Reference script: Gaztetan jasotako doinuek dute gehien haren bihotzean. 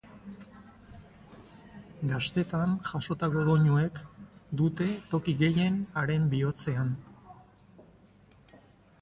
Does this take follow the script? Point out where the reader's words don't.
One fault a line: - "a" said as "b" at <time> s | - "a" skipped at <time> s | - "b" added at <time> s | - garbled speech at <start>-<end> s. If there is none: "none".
- "toki" added at 5.1 s